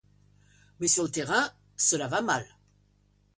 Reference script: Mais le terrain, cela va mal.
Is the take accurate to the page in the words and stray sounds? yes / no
no